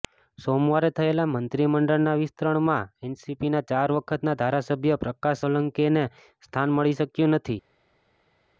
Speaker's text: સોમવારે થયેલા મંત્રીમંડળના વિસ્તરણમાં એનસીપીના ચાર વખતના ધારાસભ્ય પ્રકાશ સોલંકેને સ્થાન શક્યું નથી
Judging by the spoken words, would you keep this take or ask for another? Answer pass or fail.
fail